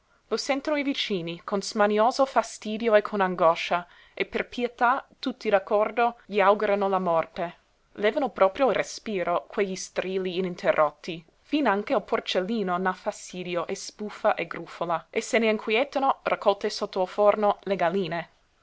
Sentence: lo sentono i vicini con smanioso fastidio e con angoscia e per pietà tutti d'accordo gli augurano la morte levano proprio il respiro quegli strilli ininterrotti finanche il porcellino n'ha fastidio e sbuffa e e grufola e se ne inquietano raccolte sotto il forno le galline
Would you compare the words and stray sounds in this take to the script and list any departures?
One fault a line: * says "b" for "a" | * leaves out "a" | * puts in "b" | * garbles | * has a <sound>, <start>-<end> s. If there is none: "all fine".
* leaves out "e"